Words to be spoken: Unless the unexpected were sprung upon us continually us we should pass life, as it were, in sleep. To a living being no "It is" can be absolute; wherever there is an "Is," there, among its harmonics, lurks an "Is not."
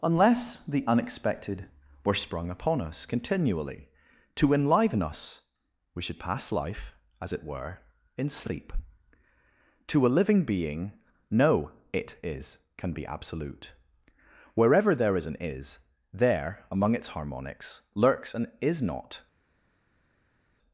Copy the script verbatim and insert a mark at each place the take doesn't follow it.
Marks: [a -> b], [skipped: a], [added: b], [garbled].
Unless the unexpected were sprung upon us continually [added: to enliven] us we should pass life, as it were, in sleep. To a living being no "It is" can be absolute; wherever there is an "Is," there, among its harmonics, lurks an "Is not."